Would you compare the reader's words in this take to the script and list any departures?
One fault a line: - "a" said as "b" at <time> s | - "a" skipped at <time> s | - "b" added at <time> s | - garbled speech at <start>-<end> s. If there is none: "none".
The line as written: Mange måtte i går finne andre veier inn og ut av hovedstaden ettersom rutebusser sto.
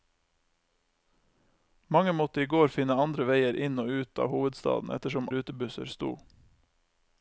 none